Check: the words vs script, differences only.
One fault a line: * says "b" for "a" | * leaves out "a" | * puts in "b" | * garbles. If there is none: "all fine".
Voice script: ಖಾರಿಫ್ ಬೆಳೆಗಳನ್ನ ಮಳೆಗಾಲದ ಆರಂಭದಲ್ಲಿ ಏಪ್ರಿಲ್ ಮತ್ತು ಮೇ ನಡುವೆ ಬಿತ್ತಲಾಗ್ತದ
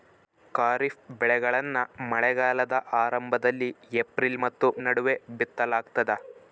* leaves out "ಮೇ"